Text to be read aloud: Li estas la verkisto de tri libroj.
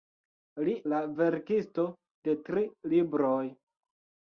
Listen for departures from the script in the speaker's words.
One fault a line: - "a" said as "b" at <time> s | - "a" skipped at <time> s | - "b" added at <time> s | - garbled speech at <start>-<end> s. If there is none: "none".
- "estas" skipped at 0.7 s